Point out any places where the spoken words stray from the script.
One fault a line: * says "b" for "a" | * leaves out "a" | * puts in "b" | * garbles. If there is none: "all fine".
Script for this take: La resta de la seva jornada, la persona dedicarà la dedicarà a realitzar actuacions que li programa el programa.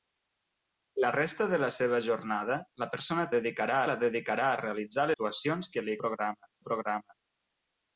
all fine